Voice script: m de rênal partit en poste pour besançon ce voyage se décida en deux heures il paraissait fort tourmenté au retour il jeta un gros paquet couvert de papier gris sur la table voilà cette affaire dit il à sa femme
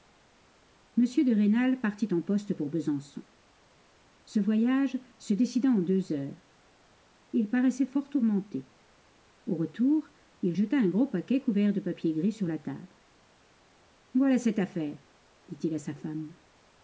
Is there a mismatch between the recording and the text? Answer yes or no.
no